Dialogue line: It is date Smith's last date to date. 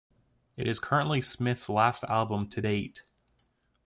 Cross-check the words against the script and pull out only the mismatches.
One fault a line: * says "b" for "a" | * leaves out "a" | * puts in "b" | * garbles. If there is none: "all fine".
* says "currently" for "date"
* says "album" for "date"